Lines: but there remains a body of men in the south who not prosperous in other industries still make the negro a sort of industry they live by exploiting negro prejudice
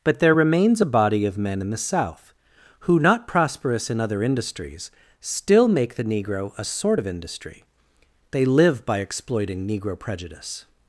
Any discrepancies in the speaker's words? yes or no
no